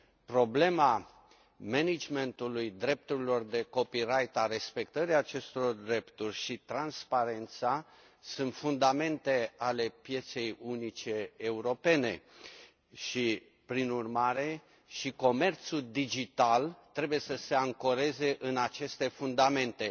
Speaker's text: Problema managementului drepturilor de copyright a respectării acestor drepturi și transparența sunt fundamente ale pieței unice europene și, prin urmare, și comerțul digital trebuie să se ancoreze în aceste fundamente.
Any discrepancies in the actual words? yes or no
no